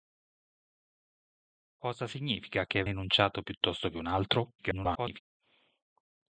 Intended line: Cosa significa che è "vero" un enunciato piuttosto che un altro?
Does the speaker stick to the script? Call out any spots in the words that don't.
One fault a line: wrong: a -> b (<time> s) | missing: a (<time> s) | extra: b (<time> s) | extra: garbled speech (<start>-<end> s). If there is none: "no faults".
missing: vero un (2.9 s)
extra: garbled speech (4.6-5.2 s)